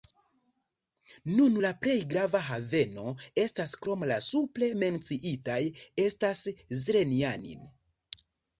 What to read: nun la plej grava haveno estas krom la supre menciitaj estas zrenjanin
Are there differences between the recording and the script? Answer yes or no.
no